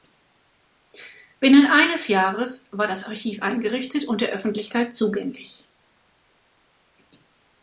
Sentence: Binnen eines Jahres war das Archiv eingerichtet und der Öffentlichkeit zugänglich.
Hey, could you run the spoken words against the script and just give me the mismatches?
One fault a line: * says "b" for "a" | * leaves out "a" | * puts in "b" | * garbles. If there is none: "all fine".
all fine